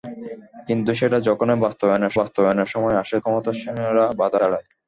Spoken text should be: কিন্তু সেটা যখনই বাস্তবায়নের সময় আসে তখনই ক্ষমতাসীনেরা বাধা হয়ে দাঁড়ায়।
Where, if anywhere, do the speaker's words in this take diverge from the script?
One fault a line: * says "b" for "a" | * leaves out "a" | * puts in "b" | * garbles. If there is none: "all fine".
* puts in "বাস্তবায়নের"
* leaves out "তখনই"
* leaves out "হয়ে"